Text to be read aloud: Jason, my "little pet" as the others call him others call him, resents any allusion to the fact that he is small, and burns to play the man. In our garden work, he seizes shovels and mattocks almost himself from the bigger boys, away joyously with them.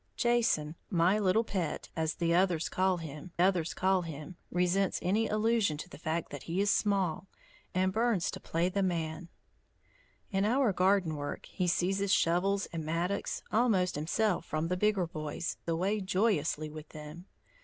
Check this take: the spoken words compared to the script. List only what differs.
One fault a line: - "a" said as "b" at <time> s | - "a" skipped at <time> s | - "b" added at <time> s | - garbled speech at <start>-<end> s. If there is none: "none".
none